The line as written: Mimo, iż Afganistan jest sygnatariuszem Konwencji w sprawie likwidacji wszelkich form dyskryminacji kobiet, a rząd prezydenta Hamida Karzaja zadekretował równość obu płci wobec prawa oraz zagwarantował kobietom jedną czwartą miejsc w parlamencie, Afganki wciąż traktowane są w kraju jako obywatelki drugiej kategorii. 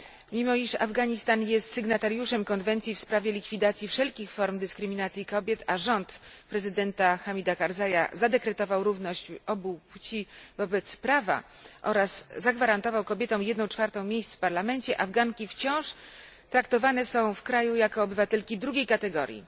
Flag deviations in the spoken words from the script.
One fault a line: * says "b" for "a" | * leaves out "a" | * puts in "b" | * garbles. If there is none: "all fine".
all fine